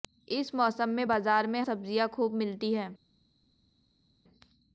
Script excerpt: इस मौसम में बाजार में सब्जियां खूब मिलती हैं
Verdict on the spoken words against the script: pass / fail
pass